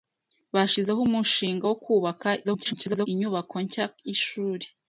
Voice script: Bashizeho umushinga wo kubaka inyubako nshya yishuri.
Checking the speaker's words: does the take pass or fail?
fail